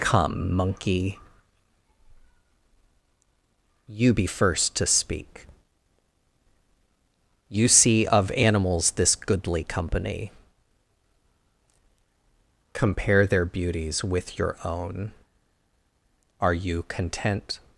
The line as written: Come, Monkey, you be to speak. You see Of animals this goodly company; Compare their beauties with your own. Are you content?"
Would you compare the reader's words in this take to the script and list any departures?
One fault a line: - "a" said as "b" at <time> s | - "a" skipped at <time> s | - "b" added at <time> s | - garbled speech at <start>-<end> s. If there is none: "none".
- "first" added at 4.2 s